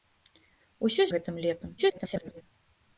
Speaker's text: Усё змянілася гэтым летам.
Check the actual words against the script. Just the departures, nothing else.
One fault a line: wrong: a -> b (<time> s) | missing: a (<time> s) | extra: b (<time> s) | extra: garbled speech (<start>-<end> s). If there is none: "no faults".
missing: змянілася (1.1 s)
extra: garbled speech (1.8-2.4 s)